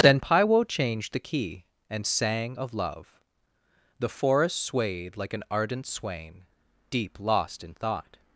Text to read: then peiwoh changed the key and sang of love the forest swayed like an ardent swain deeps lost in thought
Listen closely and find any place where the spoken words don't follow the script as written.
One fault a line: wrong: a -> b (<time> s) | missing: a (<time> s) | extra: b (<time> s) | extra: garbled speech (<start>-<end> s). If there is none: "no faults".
wrong: deeps -> deep (6.9 s)